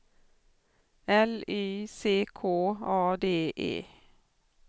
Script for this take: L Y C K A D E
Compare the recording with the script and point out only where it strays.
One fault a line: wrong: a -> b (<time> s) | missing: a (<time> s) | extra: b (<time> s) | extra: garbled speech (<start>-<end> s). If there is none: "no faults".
no faults